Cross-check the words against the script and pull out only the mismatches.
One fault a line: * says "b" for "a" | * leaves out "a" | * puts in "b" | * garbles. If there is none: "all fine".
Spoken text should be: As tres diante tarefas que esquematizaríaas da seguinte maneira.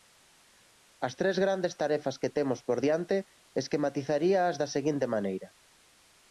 * says "grandes" for "diante"
* puts in "temos por diante"